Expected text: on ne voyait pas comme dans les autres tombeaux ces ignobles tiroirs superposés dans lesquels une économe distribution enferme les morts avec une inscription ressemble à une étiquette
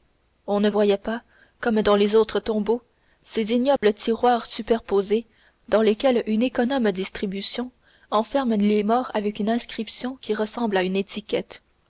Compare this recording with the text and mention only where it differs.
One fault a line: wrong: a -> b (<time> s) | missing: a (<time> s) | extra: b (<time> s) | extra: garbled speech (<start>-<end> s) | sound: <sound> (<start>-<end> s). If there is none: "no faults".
sound: dropout (3.8-3.8 s)
extra: qui (10.2 s)